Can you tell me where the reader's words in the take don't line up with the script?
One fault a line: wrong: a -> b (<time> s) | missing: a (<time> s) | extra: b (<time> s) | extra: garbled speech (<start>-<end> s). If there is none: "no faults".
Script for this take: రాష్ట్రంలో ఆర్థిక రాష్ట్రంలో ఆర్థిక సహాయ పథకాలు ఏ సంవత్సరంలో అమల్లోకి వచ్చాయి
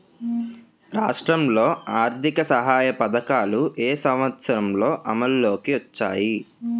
missing: రాష్ట్రంలో ఆర్థిక (2.4 s)